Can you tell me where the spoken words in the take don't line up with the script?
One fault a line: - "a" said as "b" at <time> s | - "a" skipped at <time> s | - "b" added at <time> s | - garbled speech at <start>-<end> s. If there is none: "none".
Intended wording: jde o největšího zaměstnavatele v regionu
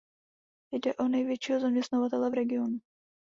none